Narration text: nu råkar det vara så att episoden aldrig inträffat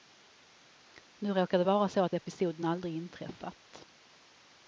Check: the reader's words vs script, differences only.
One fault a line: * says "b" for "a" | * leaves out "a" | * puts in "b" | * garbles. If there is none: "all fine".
all fine